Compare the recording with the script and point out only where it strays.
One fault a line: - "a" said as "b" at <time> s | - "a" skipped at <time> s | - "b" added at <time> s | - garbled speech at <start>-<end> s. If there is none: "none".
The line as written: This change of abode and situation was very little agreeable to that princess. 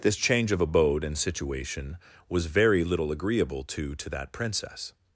- "to" added at 3.9 s